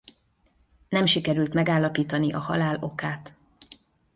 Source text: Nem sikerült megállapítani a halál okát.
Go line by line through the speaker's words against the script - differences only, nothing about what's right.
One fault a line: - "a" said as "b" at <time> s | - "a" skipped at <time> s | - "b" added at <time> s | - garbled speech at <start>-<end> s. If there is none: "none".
none